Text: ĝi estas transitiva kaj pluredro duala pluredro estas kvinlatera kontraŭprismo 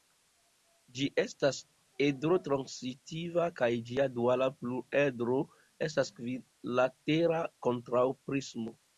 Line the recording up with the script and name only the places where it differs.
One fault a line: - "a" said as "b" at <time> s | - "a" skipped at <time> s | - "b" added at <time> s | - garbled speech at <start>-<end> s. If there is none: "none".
- "edro" added at 2.0 s
- "pluredro" said as "ĝia" at 3.9 s